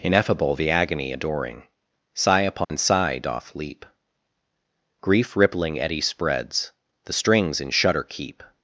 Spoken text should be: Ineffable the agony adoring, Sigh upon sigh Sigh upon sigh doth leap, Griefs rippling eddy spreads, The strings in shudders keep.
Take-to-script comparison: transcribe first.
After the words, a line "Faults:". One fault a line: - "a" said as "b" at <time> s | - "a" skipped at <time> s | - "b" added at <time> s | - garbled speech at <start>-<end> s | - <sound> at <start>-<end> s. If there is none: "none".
Ineffable the agony adoring, Sigh upon sigh doth leap, Grief rippling eddy spreads, The strings in shudder keep.
Faults:
- dropout at 2.6-2.7 s
- "Sigh upon sigh" skipped at 3.2 s
- "Griefs" said as "Grief" at 5.0 s
- "shudders" said as "shudder" at 7.7 s